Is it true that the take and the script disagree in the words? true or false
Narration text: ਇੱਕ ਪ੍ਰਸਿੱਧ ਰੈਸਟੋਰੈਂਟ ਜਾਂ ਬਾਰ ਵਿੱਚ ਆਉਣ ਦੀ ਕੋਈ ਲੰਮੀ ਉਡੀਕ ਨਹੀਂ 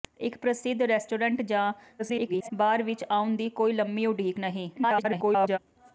true